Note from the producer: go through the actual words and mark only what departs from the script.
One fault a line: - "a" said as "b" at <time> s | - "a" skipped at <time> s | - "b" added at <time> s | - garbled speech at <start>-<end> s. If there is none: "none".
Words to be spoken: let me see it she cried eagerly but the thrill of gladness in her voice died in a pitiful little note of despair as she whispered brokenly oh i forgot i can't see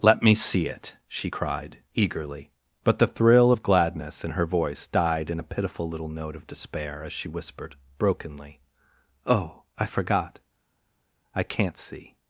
none